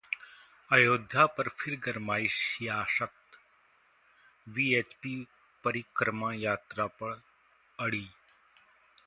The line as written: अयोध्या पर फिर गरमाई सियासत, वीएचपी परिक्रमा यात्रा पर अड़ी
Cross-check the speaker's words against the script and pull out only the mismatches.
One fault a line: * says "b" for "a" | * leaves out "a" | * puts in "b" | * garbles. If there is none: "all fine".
all fine